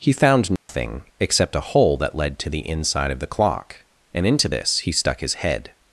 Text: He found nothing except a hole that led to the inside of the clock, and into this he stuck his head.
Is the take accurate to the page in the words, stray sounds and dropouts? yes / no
no